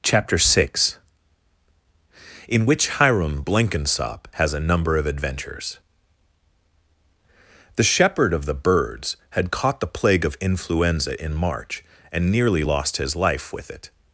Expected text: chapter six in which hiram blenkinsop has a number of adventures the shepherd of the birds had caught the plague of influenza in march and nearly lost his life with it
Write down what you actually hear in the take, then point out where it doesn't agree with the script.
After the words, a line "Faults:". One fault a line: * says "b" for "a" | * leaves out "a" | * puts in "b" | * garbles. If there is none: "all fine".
chapter six in which hiram blenkinsop has a number of adventures the shepherd of the birds had caught the plague of influenza in march and nearly lost his life with it
Faults:
all fine